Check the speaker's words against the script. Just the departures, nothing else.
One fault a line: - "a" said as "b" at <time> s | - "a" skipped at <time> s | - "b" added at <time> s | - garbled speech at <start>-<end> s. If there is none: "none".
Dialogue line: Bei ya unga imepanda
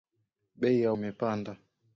- "unga" skipped at 0.9 s